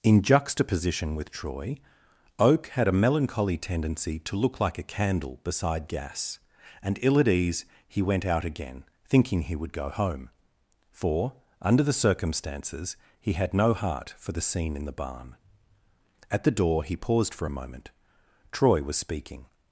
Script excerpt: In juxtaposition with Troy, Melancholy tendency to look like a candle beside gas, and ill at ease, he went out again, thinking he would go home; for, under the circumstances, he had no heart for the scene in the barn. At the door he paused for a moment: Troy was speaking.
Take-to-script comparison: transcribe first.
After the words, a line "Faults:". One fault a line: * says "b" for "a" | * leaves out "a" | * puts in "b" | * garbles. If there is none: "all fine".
In juxtaposition with Troy, Oak had a melancholy tendency to look like a candle beside gas, and ill at ease, he went out again, thinking he would go home; for, under the circumstances, he had no heart for the scene in the barn. At the door he paused for a moment: Troy was speaking.
Faults:
* puts in "Oak had a"